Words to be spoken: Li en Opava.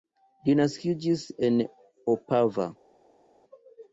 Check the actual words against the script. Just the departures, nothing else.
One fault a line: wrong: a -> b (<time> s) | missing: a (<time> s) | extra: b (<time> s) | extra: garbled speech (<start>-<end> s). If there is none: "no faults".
extra: naskiĝis (0.6 s)